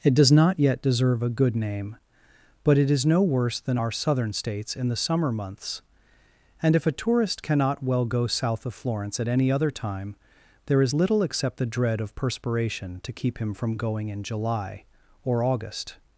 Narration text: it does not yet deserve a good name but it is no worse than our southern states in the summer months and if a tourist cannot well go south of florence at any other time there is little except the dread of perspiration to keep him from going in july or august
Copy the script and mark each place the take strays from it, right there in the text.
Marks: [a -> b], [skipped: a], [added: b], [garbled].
it does not yet deserve a good name but it is no worse than our southern states in the summer months and if a tourist cannot well go south of florence at any other time there is little except the dread of perspiration to keep him from going in july or august